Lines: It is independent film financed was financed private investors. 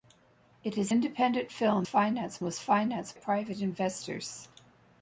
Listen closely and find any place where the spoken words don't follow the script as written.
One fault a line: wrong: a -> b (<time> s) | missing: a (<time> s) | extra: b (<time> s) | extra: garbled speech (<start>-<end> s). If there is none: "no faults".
no faults